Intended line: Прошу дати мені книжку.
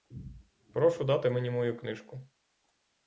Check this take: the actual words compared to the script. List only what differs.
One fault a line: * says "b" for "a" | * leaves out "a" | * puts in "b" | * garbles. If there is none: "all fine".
* puts in "мою"